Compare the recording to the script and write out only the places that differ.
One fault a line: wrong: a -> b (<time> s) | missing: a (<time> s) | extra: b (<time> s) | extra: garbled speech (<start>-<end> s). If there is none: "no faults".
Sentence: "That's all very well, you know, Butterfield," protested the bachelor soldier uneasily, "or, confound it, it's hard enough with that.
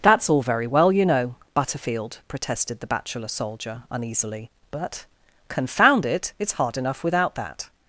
wrong: or -> but (4.7 s)
wrong: with -> without (7.0 s)